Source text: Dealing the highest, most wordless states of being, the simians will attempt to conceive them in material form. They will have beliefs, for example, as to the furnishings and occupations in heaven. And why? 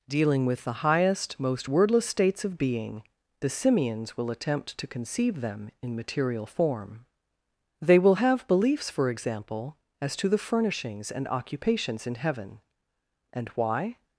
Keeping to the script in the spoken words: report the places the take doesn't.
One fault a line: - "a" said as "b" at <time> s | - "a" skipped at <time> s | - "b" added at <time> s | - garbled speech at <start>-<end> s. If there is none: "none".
- "with" added at 0.5 s